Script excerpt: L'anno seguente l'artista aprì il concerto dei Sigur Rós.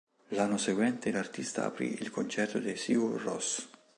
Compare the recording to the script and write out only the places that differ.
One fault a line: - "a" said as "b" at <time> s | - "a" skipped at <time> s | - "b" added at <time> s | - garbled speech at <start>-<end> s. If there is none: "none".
none